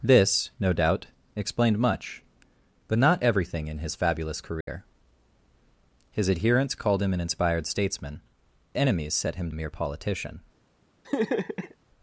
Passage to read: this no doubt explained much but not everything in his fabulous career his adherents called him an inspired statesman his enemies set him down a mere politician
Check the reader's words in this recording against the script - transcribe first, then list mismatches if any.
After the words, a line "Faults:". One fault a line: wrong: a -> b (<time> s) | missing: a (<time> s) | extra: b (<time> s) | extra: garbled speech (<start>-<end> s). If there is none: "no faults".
this no doubt explained much but not everything in his fabulous career his adherents called him an inspired statesman enemies set him a mere politician
Faults:
missing: his (8.2 s)
missing: down (9.5 s)